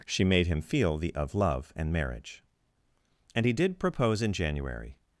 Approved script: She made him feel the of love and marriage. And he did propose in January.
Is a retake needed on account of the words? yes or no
no